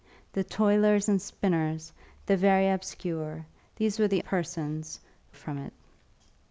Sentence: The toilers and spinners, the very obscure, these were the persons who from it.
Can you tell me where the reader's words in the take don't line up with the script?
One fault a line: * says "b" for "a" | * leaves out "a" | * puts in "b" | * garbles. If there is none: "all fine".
all fine